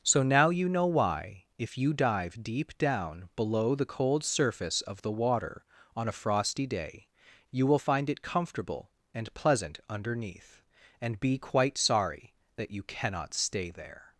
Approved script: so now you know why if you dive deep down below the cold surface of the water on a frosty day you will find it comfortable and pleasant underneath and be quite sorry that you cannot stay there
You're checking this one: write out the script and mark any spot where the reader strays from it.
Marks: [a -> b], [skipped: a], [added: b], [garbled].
so now you know why if you dive deep down below the cold surface of the water on a frosty day you will find it comfortable and pleasant underneath and be quite sorry that you cannot stay there